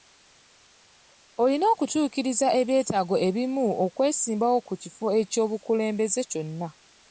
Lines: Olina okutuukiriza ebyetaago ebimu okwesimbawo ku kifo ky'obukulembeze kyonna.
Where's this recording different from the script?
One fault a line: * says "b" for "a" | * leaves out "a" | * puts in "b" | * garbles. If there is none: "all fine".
all fine